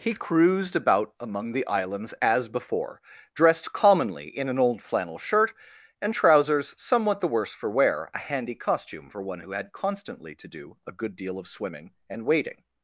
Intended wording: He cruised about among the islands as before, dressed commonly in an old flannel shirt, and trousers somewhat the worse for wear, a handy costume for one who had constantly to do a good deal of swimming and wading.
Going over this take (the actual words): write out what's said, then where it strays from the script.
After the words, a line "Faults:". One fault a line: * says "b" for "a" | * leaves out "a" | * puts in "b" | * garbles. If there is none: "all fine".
He cruised about among the islands as before, dressed commonly in an old flannel shirt, and trousers somewhat the worse for wear, a handy costume for one who had constantly to do a good deal of swimming and wading.
Faults:
all fine